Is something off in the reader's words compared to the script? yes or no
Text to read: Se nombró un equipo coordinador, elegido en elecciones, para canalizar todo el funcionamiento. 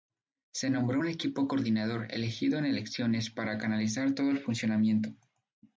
no